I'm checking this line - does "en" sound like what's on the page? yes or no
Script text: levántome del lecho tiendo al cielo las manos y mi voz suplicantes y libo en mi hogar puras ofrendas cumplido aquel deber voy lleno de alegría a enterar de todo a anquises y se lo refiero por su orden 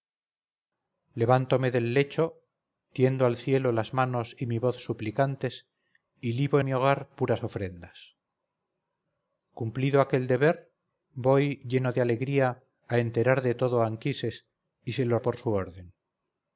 no